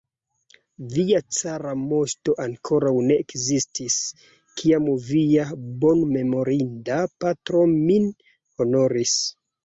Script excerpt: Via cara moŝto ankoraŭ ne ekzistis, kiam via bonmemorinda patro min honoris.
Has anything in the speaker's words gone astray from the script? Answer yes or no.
no